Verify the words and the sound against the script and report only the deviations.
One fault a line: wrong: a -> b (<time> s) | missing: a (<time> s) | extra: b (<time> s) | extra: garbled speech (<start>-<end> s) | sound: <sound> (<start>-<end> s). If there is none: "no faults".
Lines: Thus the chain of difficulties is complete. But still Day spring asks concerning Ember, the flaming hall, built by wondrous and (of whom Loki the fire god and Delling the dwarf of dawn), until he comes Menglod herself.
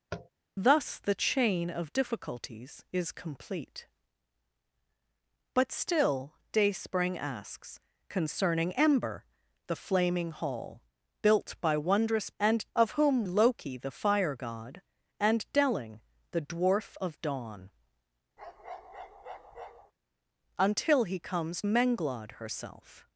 sound: tap (0.1-0.3 s)
sound: bark (18.4-19.9 s)